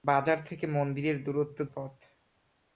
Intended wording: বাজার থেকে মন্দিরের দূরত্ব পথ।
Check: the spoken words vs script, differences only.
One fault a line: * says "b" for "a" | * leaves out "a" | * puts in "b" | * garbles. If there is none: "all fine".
all fine